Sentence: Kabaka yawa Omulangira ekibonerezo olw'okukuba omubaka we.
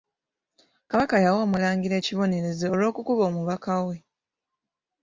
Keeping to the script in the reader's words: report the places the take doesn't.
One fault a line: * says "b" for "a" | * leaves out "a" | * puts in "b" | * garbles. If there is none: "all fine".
all fine